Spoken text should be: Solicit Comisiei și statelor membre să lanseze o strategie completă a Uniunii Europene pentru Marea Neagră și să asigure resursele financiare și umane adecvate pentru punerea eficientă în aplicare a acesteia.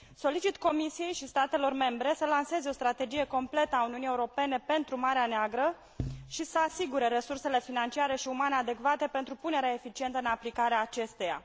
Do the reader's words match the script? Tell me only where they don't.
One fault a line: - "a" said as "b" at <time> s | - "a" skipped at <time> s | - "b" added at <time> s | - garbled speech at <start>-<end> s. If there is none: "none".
none